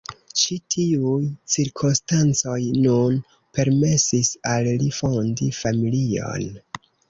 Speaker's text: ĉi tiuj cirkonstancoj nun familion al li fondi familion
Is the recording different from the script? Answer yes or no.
yes